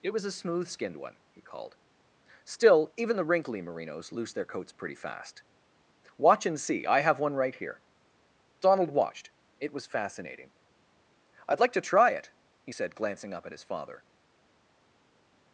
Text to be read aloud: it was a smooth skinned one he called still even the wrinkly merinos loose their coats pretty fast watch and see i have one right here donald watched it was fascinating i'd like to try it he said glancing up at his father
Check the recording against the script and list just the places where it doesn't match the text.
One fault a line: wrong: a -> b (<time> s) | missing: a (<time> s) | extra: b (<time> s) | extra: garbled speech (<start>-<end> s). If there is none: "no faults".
no faults